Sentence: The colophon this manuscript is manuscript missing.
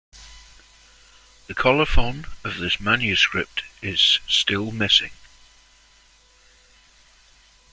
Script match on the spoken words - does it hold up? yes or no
no